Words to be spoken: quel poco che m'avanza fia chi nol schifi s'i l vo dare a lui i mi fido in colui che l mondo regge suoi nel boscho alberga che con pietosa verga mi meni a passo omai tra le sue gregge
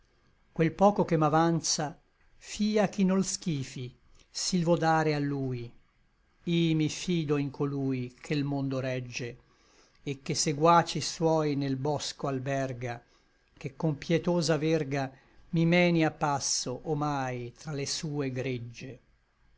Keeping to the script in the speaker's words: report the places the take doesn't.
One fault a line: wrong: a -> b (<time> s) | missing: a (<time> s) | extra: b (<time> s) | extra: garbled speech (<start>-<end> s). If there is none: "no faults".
extra: et che seguaci (10.0 s)